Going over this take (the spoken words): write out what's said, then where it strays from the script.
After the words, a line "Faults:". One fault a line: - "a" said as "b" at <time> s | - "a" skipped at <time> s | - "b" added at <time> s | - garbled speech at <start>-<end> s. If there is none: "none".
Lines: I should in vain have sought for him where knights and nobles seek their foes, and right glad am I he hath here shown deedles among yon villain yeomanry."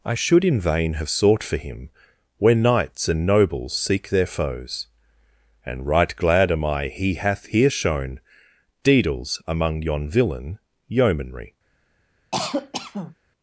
I should in vain have sought for him where knights and nobles seek their foes, and right glad am I he hath here shown deedles among yon villain yeomanry."
Faults:
none